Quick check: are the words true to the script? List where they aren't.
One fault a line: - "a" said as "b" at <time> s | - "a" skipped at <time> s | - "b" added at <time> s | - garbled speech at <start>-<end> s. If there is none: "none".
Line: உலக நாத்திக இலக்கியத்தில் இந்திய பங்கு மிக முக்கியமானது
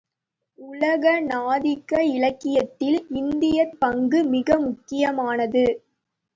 none